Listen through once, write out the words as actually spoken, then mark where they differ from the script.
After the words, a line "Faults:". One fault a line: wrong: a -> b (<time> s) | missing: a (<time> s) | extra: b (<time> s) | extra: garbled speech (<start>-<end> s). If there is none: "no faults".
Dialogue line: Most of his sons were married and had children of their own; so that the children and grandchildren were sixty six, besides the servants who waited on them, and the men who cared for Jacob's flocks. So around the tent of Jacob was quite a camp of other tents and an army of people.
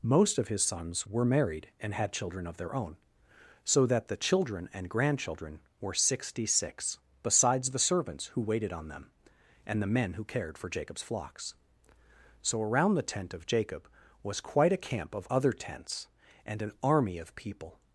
Most of his sons were married and had children of their own; so that the children and grandchildren were sixty six, besides the servants who waited on them, and the men who cared for Jacob's flocks. So around the tent of Jacob was quite a camp of other tents and an army of people.
Faults:
no faults